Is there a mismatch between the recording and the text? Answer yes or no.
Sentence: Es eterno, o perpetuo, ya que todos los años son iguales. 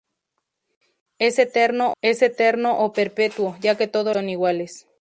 yes